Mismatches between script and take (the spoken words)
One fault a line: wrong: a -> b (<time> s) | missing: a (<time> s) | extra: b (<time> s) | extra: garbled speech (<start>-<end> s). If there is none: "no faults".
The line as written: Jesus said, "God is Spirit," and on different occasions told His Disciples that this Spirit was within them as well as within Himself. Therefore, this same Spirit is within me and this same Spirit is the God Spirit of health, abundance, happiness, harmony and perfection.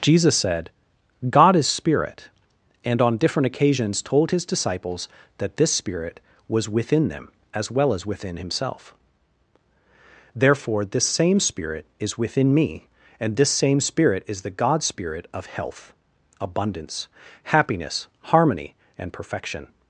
no faults